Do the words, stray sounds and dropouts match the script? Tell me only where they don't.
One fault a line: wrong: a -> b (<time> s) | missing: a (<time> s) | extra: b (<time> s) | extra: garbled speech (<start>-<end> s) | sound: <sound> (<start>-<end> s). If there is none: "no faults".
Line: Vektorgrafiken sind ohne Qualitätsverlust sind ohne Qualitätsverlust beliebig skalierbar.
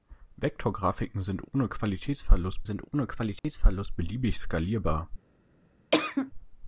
sound: dropout (3.4-3.4 s)
sound: cough (5.9-6.3 s)